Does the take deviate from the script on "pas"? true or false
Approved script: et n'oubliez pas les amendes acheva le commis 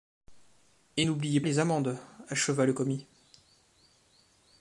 true